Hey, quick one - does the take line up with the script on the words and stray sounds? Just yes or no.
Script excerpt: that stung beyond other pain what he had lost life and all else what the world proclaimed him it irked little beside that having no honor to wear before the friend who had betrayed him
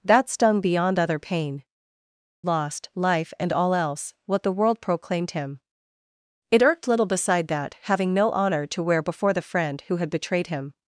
no